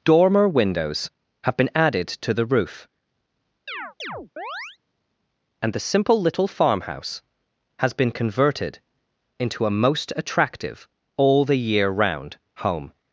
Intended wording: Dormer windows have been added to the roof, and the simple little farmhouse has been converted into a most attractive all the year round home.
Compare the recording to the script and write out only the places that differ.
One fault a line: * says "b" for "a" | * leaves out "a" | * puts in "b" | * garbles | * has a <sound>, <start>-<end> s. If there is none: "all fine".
* has a chirp, 3.7-4.8 s